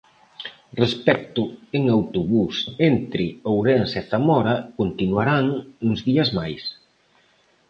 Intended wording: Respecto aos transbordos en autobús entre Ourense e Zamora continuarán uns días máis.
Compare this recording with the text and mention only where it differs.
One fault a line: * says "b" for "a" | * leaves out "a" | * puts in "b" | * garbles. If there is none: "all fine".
* leaves out "aos transbordos"